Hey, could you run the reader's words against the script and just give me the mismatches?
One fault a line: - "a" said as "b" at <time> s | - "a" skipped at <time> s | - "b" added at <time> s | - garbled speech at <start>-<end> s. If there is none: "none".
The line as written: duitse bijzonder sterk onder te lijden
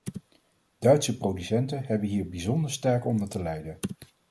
- "producenten hebben hier" added at 1.2 s